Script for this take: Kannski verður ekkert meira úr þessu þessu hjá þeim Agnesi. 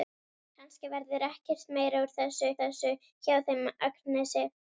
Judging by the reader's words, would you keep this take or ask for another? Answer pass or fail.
pass